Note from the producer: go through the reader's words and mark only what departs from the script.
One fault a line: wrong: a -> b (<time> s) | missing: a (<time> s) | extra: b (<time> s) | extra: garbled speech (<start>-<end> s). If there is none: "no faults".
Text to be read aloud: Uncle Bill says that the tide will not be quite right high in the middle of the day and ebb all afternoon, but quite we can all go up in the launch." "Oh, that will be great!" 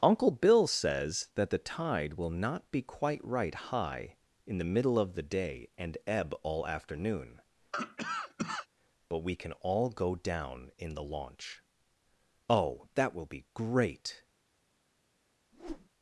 missing: quite (9.2 s)
wrong: up -> down (10.2 s)